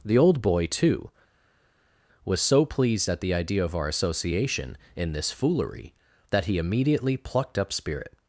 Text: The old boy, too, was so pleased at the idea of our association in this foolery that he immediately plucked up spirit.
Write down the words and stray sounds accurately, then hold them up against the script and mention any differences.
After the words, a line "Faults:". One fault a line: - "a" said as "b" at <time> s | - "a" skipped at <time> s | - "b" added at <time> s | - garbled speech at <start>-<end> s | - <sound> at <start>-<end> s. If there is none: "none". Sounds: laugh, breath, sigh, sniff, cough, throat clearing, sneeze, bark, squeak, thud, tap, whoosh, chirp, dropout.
The old boy, too, was so pleased at the idea of our association in this foolery that he immediately plucked up spirit.
Faults:
none